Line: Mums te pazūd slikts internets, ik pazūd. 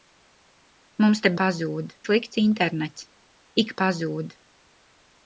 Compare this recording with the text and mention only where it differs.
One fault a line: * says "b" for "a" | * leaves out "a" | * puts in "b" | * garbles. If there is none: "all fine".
all fine